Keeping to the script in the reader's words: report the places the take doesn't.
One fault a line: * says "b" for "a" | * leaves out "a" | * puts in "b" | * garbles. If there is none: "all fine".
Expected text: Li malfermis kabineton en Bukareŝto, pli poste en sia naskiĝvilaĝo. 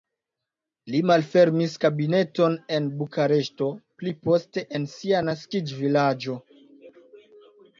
all fine